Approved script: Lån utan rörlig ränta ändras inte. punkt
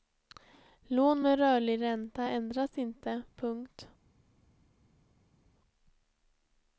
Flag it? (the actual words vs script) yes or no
yes